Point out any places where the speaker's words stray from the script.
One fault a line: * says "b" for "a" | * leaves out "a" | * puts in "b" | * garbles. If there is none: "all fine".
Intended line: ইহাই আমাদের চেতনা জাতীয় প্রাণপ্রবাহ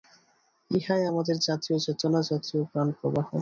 * puts in "জাতীয়"